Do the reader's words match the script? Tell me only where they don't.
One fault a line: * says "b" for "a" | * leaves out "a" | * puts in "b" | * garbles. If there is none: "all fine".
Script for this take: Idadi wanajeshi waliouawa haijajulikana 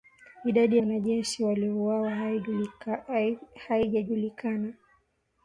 all fine